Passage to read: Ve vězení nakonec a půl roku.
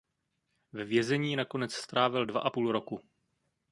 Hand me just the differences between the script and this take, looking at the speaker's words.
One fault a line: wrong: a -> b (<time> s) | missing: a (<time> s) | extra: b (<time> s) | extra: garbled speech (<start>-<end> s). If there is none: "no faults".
extra: strávil dva (1.7 s)